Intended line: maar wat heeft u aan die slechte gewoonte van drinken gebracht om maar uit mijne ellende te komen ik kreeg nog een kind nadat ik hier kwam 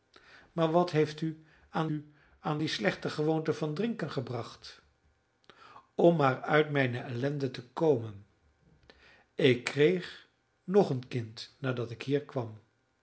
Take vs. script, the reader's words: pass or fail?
fail